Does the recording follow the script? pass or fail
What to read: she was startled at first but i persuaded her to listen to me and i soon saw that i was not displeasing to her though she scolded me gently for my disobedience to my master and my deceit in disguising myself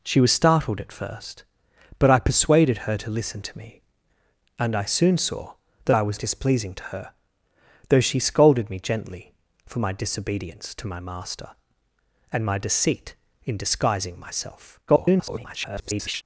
fail